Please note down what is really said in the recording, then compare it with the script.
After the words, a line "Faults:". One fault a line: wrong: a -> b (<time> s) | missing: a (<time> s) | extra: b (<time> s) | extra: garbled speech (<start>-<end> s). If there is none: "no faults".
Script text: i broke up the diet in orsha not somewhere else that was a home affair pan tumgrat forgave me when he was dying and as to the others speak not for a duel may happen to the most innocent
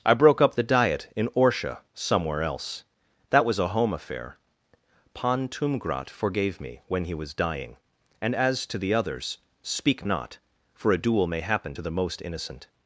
i broke up the diet in orsha somewhere else that was a home affair pan tumgrat forgave me when he was dying and as to the others speak not for a duel may happen to the most innocent
Faults:
missing: not (1.8 s)